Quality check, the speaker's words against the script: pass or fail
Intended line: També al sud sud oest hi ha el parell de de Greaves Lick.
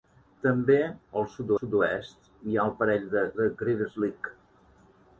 pass